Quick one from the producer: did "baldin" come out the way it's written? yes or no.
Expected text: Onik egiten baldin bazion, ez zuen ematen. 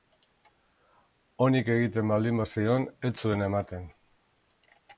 yes